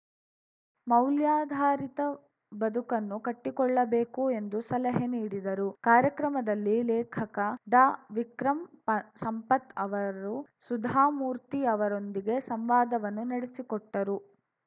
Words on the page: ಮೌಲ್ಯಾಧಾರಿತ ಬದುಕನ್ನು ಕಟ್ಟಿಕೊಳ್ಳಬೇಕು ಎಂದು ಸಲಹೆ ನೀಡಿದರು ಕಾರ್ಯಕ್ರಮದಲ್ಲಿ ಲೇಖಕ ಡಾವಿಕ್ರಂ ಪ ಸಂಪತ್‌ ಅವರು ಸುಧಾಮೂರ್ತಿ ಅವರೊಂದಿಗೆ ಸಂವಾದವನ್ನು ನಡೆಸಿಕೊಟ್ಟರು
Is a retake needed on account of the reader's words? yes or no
no